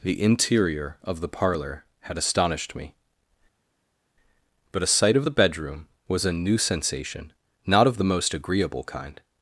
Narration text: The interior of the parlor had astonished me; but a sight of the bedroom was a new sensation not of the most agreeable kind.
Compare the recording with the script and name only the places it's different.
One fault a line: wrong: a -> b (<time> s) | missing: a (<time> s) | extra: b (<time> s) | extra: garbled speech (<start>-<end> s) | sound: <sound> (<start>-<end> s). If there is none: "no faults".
no faults